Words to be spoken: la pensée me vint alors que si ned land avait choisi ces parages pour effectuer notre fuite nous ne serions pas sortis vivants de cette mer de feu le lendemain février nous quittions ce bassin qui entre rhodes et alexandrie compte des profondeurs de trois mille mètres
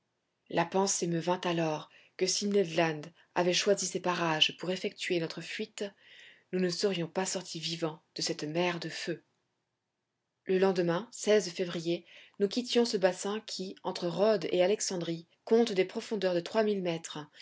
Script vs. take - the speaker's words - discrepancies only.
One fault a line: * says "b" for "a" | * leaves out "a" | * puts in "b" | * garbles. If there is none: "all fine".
all fine